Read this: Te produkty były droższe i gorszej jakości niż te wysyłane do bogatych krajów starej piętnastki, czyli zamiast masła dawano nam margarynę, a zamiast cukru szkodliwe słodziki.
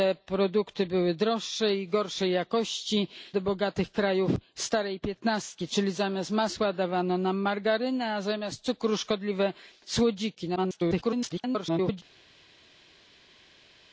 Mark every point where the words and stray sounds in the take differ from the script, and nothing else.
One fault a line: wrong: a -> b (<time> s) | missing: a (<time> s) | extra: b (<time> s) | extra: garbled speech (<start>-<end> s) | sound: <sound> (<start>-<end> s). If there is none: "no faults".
missing: niż te wysyłane (3.1 s)
extra: garbled speech (10.6-12.0 s)